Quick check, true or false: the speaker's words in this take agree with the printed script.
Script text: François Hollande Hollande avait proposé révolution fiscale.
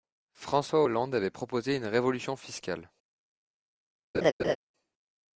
false